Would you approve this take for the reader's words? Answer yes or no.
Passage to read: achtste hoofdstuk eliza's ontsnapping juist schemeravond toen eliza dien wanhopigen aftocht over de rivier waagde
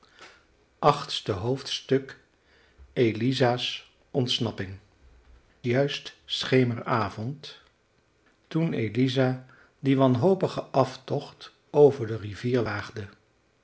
yes